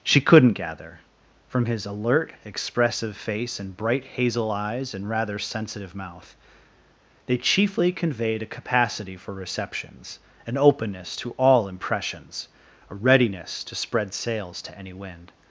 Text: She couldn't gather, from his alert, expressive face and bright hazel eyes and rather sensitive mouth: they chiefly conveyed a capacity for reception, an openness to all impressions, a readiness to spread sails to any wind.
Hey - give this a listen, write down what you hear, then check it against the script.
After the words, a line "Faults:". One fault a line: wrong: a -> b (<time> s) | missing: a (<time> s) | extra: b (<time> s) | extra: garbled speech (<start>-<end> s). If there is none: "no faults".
She couldn't gather, from his alert, expressive face and bright hazel eyes and rather sensitive mouth: they chiefly conveyed a capacity for receptions, an openness to all impressions, a readiness to spread sails to any wind.
Faults:
wrong: reception -> receptions (9.3 s)